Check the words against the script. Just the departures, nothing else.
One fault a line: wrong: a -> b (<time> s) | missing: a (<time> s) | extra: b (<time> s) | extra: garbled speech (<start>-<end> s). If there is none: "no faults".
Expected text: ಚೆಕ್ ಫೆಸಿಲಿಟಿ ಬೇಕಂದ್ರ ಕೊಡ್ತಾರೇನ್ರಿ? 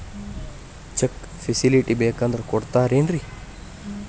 no faults